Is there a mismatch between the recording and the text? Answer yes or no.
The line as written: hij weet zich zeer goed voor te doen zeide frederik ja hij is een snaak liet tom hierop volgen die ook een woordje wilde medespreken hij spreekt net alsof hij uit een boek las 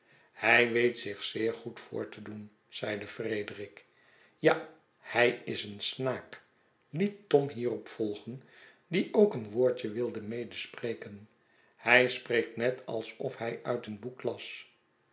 no